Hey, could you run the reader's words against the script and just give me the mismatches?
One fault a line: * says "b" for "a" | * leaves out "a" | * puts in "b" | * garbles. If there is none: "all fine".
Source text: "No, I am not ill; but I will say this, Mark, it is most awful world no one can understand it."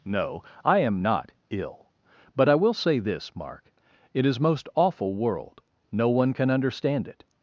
all fine